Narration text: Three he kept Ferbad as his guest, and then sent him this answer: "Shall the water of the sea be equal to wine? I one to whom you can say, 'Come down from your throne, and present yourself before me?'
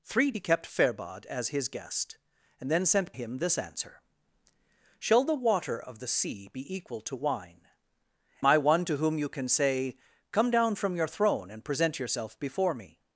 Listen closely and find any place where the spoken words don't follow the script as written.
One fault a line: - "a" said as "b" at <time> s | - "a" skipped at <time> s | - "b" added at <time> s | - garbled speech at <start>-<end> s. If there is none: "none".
none